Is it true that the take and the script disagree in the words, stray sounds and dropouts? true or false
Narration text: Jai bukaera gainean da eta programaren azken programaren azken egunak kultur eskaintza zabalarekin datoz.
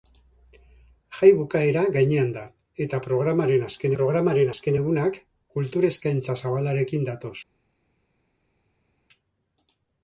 false